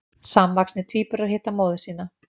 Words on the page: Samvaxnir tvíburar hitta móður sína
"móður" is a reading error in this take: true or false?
false